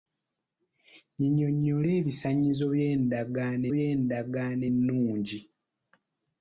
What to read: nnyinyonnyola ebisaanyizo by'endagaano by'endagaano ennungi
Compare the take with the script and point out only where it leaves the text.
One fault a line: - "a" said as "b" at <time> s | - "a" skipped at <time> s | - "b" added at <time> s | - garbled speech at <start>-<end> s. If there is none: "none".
none